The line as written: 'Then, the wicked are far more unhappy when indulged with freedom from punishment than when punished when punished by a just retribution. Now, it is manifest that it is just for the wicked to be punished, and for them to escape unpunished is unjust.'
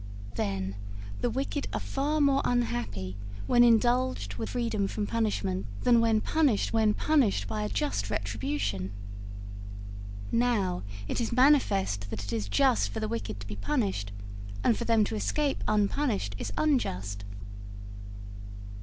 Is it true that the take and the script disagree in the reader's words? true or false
false